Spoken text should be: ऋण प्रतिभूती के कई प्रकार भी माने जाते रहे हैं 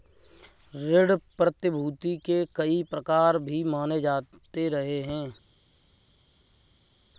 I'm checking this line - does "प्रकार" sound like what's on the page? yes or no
yes